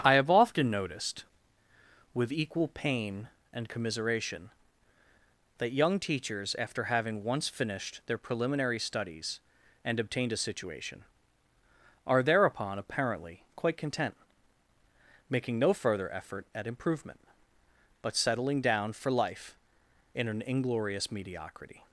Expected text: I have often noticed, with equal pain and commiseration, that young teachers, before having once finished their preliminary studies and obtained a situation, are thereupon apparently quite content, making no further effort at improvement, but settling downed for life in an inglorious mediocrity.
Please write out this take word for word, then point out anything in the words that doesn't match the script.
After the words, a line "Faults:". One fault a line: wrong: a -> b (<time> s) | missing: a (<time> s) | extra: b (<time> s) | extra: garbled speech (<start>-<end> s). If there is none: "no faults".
I have often noticed, with equal pain and commiseration, that young teachers, after having once finished their preliminary studies and obtained a situation, are thereupon apparently quite content, making no further effort at improvement, but settling down for life in an inglorious mediocrity.
Faults:
wrong: before -> after (6.6 s)
wrong: downed -> down (18.6 s)